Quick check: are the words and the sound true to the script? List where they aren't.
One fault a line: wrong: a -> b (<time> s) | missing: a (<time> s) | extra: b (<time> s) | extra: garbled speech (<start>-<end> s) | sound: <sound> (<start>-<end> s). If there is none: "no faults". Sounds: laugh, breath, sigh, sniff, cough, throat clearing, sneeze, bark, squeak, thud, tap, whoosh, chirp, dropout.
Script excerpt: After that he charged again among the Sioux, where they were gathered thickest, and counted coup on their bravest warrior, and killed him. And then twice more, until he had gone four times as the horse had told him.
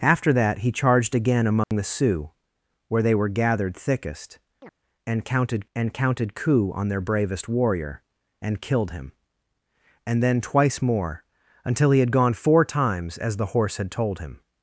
sound: dropout (1.6-1.7 s)
sound: chirp (4.6-4.7 s)
extra: and counted (5.7 s)